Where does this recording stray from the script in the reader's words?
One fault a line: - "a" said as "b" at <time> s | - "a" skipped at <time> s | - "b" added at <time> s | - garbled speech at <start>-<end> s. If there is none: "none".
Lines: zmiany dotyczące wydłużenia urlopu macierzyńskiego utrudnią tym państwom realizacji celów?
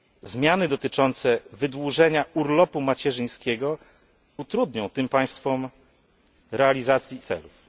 none